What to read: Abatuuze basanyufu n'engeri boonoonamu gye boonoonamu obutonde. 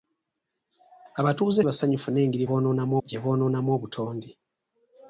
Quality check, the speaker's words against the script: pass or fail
pass